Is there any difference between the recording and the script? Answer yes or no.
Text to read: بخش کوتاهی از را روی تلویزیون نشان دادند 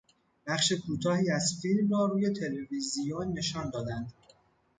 yes